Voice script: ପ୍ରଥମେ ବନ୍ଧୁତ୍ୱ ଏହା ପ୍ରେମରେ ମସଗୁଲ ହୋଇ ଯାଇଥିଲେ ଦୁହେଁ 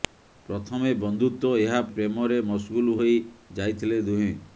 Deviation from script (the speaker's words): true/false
false